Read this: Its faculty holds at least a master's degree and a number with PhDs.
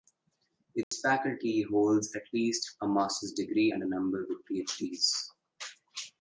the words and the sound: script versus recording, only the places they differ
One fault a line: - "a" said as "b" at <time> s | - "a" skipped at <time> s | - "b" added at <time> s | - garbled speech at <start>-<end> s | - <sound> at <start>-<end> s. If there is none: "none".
- dropout at 0.8-0.9 s